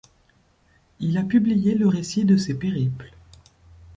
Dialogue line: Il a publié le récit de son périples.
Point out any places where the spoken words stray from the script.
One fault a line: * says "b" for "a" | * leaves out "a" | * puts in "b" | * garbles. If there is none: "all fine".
* says "ses" for "son"